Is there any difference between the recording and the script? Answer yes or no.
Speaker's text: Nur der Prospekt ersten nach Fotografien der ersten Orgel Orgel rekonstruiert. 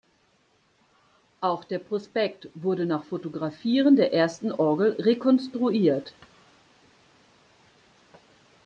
yes